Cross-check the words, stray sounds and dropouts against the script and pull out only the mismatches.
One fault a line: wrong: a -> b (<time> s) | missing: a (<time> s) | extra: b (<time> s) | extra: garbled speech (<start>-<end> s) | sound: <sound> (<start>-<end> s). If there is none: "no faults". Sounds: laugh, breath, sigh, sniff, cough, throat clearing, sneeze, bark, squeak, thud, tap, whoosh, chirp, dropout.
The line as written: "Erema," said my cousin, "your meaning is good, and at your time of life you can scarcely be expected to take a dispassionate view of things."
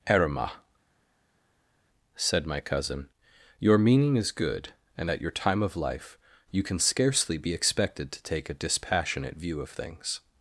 no faults